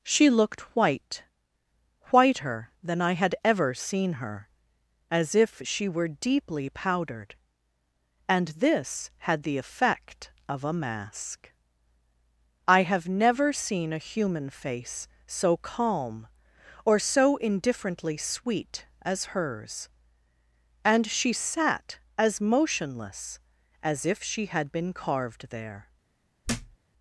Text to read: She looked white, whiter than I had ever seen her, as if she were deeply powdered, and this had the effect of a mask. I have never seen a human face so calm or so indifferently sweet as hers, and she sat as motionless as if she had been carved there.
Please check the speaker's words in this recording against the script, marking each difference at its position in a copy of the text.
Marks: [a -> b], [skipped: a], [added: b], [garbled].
She looked white, whiter than I had ever seen her, as if she were deeply powdered, and this had the effect of a mask. I have never seen a human face so calm or so indifferently sweet as hers, and she sat as motionless as if she had been carved there.